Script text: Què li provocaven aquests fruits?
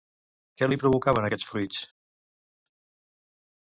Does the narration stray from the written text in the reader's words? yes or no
no